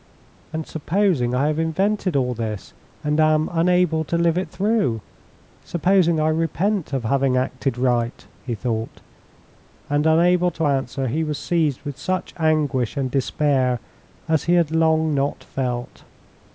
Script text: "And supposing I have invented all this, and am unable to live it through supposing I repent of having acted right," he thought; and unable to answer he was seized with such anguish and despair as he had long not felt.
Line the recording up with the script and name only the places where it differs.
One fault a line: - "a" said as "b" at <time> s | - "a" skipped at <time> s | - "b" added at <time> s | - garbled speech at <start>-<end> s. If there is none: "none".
none